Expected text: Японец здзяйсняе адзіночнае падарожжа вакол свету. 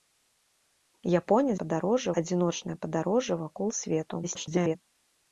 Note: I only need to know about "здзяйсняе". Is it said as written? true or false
false